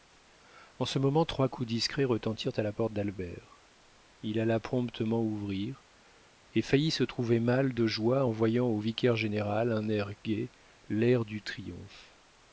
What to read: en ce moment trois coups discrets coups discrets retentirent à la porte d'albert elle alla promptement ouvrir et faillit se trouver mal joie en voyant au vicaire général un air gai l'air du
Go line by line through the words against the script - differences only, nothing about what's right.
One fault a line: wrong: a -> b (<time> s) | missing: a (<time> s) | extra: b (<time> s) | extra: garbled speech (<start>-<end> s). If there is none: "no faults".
missing: coups discrets (2.0 s)
wrong: elle -> il (4.2 s)
extra: de (7.7 s)